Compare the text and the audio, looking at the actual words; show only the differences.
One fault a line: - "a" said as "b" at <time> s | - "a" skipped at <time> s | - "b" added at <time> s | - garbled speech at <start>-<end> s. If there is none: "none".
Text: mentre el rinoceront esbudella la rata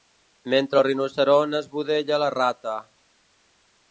none